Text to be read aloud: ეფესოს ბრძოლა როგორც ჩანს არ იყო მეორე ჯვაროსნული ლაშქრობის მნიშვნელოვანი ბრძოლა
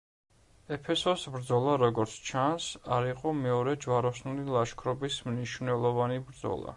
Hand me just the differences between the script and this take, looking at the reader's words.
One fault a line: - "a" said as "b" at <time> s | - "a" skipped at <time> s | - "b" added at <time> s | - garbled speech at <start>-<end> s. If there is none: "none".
none